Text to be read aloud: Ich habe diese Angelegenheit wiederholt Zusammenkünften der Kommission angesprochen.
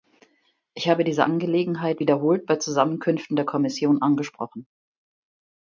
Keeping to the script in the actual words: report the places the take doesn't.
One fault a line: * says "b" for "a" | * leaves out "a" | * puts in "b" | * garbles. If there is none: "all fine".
* puts in "bei"